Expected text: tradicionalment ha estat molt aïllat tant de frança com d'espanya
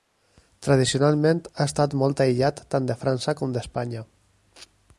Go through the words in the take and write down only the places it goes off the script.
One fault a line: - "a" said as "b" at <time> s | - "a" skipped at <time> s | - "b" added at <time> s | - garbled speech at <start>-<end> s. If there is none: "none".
none